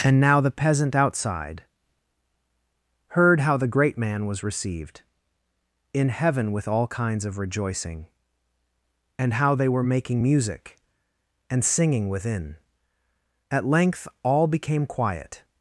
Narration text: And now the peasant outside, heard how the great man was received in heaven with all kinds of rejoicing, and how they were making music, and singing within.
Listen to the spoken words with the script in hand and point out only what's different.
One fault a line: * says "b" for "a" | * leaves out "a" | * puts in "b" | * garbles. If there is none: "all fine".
* puts in "At length all became quiet"